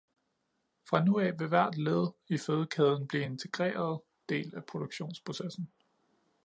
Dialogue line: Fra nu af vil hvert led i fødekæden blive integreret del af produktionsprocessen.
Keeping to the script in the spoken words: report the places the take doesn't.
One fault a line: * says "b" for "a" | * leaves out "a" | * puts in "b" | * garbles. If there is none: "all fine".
all fine